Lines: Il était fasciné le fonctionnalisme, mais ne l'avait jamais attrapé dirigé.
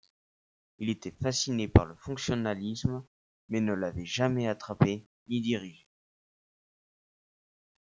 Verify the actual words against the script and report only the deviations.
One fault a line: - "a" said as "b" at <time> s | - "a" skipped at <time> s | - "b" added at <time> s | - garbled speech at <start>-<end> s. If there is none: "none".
- "par" added at 1.7 s
- "ni" added at 5.3 s